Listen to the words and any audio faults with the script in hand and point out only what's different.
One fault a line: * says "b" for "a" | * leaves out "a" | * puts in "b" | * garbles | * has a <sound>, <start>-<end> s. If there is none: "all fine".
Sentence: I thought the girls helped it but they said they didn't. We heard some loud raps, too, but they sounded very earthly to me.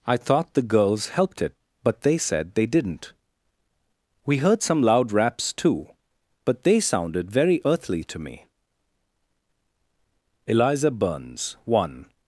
* puts in "Eliza Burns one"